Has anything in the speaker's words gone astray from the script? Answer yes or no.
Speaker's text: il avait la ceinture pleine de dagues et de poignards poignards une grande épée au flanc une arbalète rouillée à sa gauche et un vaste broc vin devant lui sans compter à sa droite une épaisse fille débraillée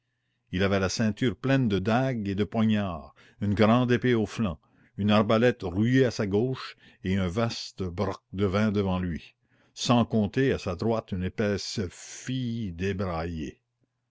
yes